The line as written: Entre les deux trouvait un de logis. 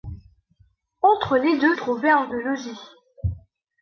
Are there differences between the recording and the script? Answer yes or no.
no